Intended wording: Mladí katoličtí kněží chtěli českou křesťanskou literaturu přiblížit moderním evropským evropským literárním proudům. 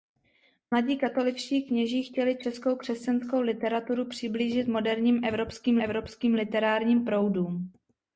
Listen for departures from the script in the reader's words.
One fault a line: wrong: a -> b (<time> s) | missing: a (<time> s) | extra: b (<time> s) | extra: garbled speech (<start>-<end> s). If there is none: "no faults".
no faults